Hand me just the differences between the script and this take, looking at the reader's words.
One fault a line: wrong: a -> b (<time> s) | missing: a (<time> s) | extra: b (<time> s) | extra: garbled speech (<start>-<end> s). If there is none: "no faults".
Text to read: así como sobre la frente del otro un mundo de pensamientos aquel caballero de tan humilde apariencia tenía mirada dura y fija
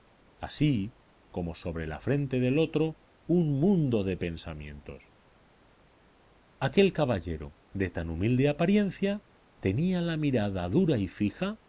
extra: la (10.0 s)